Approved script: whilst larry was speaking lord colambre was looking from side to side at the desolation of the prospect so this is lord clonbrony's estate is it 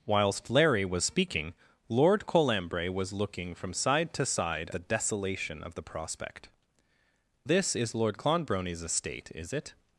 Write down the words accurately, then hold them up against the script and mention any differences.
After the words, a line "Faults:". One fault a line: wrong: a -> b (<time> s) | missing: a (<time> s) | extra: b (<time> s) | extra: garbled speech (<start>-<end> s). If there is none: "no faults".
whilst larry was speaking lord colambre was looking from side to side the desolation of the prospect this is lord clonbrony's estate is it
Faults:
missing: at (4.7 s)
missing: so (6.5 s)